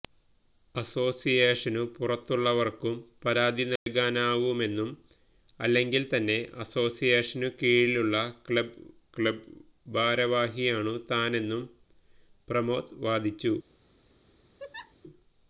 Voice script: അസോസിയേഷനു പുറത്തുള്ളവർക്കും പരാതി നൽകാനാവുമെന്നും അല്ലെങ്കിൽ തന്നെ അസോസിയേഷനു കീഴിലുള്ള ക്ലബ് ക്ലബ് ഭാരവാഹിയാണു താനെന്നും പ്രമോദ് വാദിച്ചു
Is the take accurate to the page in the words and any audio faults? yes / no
no